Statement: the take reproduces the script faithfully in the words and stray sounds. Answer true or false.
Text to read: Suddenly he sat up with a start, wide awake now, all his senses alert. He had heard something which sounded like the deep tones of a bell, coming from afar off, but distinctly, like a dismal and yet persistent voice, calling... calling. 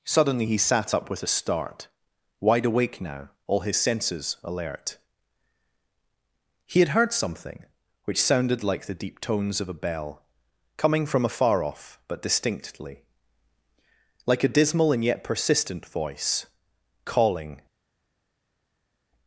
false